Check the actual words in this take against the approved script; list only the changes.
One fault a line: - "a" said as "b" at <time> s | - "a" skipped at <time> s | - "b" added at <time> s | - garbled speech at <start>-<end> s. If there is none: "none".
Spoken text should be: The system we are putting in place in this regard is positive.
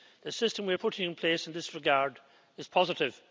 none